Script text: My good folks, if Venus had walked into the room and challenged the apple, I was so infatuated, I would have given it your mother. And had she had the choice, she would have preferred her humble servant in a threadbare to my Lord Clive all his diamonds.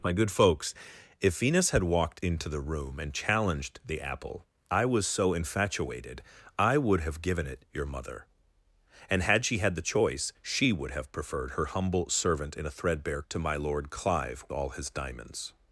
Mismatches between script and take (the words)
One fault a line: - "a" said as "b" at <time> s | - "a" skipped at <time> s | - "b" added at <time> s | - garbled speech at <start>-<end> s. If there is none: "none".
none